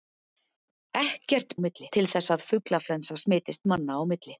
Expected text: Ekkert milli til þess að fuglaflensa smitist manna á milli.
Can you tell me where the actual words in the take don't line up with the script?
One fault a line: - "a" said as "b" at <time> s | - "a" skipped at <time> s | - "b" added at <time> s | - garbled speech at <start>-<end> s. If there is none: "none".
none